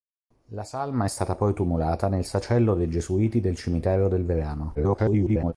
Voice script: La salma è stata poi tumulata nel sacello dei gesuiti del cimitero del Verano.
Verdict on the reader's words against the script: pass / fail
fail